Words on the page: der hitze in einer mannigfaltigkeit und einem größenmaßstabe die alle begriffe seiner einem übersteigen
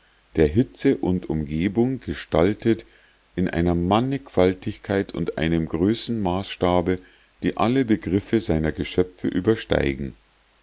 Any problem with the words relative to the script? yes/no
yes